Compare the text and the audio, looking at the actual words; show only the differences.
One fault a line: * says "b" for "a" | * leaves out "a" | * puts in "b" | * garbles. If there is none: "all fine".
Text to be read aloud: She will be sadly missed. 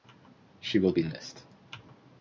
* leaves out "sadly"